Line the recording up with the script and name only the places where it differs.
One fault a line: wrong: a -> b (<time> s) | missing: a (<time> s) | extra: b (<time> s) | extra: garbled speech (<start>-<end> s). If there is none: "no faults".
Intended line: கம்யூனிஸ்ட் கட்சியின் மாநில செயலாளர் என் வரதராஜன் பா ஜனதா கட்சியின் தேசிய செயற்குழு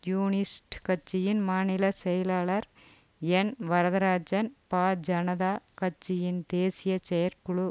no faults